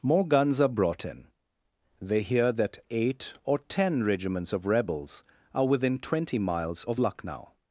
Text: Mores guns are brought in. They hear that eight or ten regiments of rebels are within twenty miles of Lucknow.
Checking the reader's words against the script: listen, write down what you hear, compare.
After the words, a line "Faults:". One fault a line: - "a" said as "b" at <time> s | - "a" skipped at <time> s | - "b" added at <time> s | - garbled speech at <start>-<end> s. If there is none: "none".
More guns are brought in. They hear that eight or ten regiments of rebels are within twenty miles of Lucknow.
Faults:
- "Mores" said as "More" at 0.0 s